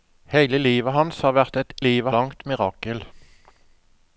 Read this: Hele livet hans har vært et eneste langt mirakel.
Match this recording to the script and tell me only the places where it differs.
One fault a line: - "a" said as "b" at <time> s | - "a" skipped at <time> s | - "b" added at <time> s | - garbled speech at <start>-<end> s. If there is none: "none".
- "eneste" said as "livet" at 1.8 s